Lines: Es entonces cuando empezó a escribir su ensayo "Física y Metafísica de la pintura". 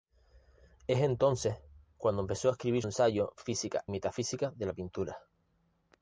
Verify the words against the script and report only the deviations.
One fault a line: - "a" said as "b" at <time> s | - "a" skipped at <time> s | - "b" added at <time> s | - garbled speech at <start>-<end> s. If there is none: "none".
- "su" skipped at 2.8 s
- "y" skipped at 3.8 s